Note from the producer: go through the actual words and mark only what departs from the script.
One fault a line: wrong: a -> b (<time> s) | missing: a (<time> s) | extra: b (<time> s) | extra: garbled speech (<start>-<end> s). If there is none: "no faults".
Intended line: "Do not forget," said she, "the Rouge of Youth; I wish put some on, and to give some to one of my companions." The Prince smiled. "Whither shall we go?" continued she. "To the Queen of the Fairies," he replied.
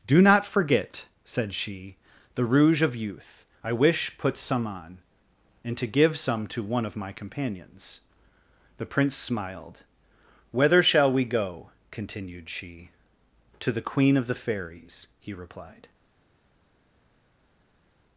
no faults